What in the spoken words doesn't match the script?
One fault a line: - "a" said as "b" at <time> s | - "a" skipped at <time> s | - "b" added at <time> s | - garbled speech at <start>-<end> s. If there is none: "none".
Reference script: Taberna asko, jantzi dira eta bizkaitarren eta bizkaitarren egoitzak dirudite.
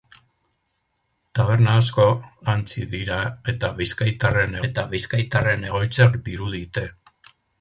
none